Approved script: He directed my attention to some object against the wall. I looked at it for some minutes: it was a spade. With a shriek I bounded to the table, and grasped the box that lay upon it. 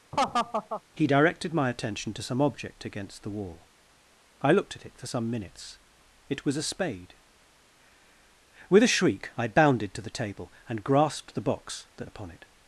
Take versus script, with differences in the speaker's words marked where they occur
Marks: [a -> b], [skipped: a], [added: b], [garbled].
He directed my attention to some object against the wall. I looked at it for some minutes: it was a spade. With a shriek I bounded to the table, and grasped the box that [skipped: lay] upon it.